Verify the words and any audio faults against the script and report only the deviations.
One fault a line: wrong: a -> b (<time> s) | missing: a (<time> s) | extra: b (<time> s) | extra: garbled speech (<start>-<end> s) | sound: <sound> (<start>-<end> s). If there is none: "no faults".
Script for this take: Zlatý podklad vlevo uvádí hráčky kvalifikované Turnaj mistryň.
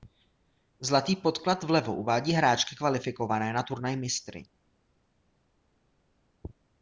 extra: na (3.5 s)